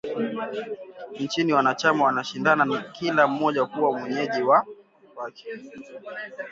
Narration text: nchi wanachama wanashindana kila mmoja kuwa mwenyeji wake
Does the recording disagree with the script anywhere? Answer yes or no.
no